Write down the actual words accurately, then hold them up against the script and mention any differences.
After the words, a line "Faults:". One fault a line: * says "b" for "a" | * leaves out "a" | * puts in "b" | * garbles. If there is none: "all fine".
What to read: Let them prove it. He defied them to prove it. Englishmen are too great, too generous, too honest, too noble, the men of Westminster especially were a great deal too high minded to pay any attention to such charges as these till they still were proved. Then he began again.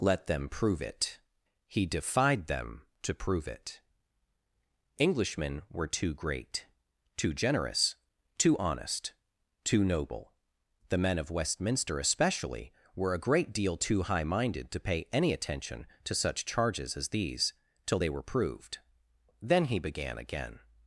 Let them prove it. He defied them to prove it. Englishmen were too great, too generous, too honest, too noble, the men of Westminster especially were a great deal too high minded to pay any attention to such charges as these till they were proved. Then he began again.
Faults:
* says "were" for "are"
* leaves out "still"